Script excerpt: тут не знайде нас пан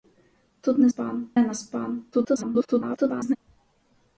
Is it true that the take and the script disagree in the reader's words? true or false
true